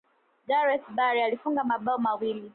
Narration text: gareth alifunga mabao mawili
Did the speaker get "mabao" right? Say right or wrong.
right